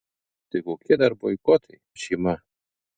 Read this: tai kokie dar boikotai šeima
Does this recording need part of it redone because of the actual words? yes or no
no